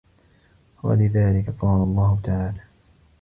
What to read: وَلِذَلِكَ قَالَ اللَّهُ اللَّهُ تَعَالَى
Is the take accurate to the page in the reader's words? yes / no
no